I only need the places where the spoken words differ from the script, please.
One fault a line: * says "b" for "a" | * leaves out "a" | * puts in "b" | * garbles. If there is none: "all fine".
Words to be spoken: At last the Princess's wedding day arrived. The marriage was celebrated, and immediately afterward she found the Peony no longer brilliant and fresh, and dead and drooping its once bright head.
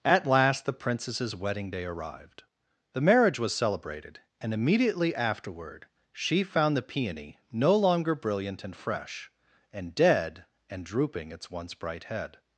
all fine